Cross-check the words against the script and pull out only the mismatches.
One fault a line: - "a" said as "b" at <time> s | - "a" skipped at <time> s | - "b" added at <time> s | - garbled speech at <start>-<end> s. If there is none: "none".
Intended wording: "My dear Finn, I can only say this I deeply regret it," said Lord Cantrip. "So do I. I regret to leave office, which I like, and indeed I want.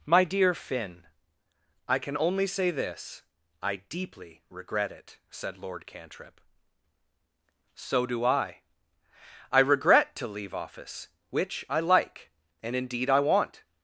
none